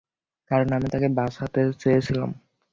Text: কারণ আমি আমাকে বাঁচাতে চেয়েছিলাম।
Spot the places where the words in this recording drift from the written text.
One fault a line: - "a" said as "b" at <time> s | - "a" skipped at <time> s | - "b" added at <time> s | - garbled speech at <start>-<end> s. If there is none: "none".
- "আমাকে" said as "তাকে" at 0.9 s